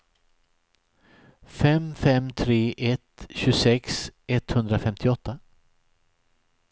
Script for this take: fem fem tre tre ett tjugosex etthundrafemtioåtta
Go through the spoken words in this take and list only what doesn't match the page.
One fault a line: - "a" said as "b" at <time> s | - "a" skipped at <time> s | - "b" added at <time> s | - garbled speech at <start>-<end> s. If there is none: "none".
- "tre" skipped at 2.6 s